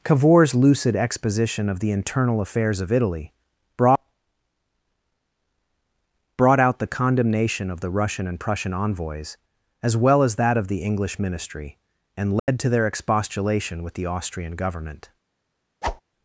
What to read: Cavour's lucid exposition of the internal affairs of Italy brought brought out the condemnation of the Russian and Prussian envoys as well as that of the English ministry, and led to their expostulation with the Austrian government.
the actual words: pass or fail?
pass